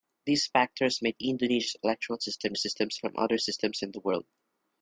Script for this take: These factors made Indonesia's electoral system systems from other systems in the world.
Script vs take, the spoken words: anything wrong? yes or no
no